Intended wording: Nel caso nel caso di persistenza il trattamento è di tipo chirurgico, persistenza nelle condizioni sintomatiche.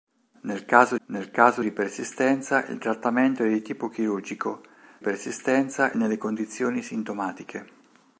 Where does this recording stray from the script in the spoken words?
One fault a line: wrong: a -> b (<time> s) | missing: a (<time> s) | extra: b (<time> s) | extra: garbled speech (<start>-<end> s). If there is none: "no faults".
no faults